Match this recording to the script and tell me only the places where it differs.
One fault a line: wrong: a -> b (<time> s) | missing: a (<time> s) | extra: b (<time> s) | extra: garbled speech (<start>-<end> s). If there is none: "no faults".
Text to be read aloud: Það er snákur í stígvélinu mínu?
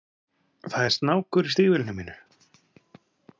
no faults